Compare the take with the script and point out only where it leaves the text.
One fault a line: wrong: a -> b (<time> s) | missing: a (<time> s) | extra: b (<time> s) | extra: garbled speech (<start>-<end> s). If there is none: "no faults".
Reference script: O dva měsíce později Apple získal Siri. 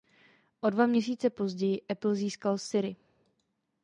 no faults